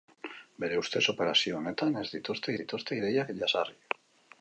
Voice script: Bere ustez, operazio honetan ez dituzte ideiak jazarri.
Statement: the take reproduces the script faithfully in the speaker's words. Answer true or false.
false